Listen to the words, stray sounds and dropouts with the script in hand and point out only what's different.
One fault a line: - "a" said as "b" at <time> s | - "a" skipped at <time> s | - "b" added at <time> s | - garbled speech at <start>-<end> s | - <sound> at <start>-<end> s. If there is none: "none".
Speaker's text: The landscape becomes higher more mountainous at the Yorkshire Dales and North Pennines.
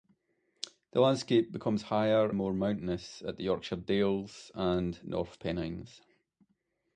none